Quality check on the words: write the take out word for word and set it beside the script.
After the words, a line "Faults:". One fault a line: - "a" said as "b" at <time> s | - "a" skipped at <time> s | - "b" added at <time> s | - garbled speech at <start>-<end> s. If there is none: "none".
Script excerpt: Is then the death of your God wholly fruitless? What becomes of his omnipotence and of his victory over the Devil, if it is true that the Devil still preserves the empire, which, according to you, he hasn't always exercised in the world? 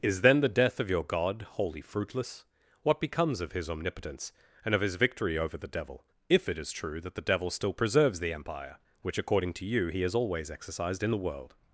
Is then the death of your God wholly fruitless? What becomes of his omnipotence and of his victory over the Devil, if it is true that the Devil still preserves the empire, which, according to you, he has always exercised in the world?
Faults:
- "hasn't" said as "has" at 10.0 s